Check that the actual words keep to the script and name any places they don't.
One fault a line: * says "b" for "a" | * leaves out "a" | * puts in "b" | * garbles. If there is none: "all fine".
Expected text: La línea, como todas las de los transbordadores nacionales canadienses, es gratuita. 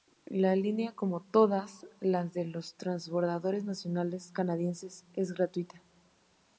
all fine